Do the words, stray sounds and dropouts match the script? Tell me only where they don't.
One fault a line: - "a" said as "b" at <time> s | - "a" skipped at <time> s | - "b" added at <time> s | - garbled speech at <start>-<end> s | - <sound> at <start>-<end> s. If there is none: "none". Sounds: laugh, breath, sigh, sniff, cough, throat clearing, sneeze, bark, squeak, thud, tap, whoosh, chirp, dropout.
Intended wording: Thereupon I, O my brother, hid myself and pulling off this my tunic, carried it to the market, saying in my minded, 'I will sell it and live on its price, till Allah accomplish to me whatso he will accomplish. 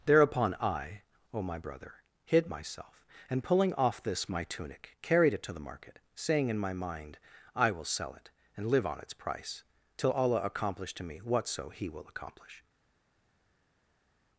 - "minded" said as "mind" at 6.7 s